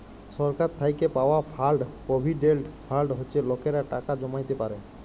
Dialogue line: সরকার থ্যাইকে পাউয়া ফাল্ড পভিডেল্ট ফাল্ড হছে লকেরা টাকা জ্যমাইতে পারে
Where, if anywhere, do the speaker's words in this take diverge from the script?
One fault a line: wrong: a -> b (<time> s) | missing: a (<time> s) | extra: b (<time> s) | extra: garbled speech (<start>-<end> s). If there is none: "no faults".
no faults